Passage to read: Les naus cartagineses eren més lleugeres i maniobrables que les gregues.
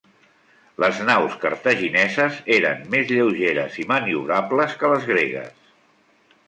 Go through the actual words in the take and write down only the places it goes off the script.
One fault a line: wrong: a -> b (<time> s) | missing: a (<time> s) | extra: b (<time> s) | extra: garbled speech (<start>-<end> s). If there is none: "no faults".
no faults